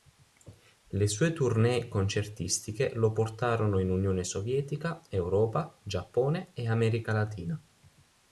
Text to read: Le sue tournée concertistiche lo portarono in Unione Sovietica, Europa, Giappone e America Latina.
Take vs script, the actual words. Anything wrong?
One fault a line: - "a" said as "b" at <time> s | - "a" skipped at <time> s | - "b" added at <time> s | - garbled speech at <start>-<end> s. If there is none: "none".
none